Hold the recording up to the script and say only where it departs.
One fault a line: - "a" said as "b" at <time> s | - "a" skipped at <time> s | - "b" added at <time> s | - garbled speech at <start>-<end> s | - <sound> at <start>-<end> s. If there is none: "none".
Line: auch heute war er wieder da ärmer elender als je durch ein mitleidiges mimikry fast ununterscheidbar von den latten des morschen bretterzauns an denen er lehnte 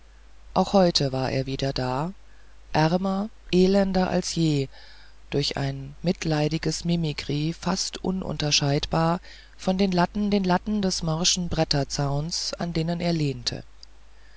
- "den latten" added at 10.3 s